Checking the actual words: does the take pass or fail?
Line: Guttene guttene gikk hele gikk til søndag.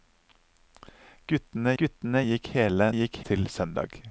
pass